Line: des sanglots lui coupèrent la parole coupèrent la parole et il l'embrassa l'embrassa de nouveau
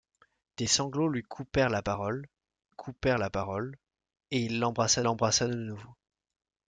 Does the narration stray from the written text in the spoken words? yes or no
no